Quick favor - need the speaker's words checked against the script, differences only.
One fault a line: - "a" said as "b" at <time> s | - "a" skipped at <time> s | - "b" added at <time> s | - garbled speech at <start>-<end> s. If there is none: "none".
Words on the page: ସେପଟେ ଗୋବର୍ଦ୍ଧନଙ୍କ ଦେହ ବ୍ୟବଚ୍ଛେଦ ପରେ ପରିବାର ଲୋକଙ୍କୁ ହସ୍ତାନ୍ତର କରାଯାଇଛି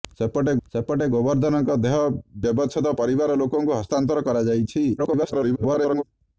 - "ସେପଟେ" added at 0.7 s
- "ପରେ" skipped at 2.9 s
- garbled speech at 5.0-6.0 s